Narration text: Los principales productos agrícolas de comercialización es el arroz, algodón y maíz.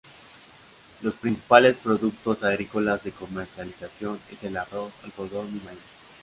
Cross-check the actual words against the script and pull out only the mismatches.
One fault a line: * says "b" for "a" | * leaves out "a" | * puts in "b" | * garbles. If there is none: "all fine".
all fine